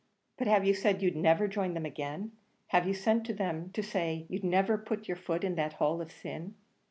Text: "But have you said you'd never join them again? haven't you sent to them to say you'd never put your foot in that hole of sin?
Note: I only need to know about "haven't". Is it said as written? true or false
false